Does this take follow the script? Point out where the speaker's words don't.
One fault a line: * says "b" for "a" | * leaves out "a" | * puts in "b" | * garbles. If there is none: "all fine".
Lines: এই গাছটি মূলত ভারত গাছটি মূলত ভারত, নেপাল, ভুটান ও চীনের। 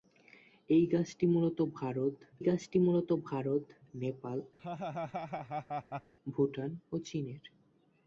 all fine